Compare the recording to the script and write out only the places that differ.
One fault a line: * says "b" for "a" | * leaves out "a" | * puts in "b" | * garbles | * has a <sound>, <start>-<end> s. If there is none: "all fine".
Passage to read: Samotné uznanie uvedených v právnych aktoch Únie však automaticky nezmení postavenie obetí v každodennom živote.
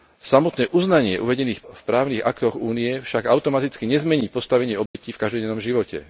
* has a dropout, 4.9-4.9 s